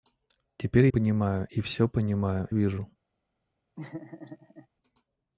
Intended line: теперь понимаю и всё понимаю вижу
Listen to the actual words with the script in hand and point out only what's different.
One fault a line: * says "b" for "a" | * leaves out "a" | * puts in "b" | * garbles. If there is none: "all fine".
all fine